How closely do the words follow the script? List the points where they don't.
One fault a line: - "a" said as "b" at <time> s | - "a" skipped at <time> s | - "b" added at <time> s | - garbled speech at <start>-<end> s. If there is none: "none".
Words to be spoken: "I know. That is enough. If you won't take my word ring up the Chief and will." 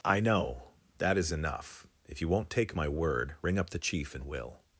none